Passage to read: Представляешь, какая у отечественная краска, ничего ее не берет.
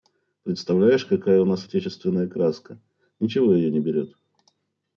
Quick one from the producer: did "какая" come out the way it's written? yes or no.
yes